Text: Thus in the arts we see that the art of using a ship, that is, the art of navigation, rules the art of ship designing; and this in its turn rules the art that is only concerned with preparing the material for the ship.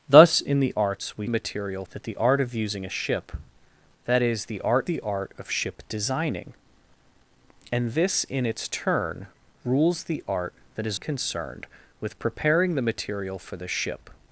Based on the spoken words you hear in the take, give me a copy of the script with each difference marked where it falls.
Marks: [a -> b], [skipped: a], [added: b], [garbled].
Thus in the arts we [see -> material] that the art of using a ship, that is, the art [skipped: of navigation, rules] the art of ship designing; and this in its turn rules the art that is [skipped: only] concerned with preparing the material for the ship.